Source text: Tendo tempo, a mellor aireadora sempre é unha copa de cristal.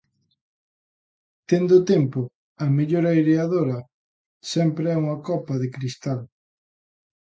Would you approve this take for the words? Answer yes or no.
yes